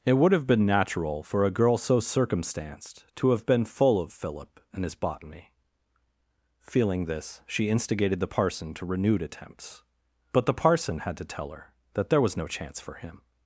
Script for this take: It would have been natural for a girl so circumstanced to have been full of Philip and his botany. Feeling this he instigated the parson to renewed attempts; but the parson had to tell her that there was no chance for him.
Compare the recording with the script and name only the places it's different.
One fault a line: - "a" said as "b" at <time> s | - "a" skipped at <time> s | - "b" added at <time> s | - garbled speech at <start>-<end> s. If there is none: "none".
- "he" said as "she" at 7.5 s